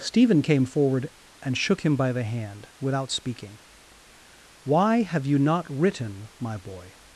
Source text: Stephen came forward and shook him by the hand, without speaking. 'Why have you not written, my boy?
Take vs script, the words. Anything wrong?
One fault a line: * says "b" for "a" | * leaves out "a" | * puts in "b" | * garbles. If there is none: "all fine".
all fine